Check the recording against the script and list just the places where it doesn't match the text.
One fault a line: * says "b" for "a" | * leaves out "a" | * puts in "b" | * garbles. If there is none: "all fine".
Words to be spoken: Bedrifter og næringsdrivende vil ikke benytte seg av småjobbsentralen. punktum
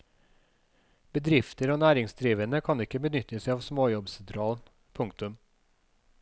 * says "kan" for "vil"